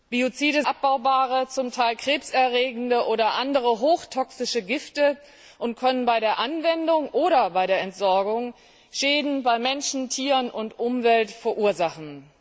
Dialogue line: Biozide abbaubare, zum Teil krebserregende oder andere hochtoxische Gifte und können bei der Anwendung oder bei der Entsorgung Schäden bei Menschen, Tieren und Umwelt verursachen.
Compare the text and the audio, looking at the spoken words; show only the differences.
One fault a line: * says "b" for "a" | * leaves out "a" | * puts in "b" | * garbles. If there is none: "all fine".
all fine